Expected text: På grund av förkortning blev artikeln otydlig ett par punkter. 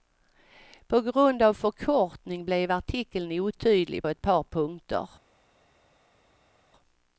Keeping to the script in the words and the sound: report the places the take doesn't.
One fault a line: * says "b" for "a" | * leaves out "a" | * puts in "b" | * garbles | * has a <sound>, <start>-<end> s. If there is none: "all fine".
all fine